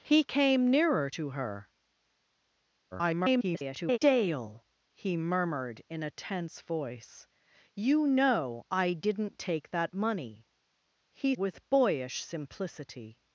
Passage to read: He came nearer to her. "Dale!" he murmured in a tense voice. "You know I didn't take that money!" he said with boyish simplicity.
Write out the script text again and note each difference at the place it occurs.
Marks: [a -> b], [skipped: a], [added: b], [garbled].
He came nearer to her. [garbled] "Dale!" he murmured in a tense voice. "You know I didn't take that money!" he [skipped: said] with boyish simplicity.